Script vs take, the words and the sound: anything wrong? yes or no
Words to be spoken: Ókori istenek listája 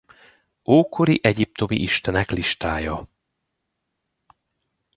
yes